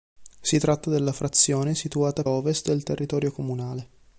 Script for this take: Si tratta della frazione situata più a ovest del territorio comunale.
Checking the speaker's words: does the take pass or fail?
fail